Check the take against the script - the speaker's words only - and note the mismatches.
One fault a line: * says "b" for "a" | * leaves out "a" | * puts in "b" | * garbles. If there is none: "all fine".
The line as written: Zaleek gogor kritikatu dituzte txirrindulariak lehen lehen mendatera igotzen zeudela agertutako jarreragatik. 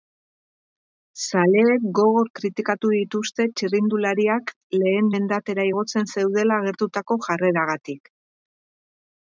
* leaves out "lehen"